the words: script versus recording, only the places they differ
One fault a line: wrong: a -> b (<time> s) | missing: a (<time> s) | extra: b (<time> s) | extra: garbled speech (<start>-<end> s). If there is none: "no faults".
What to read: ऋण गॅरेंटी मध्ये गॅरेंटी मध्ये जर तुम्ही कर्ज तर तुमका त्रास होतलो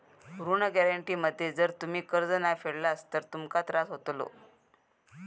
missing: गॅरेंटी मध्ये (1.5 s)
extra: नाय फेडलास (2.3 s)